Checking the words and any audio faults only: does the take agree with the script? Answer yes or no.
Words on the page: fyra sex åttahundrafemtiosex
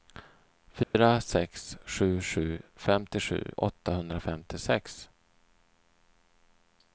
no